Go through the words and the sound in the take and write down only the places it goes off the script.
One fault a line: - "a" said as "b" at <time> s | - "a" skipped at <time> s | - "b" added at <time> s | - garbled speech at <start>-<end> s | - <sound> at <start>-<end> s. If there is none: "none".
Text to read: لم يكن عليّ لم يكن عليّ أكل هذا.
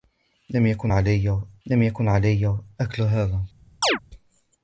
- chirp at 3.8-4.0 s